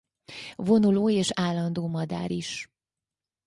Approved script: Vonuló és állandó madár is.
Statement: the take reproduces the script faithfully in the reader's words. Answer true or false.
true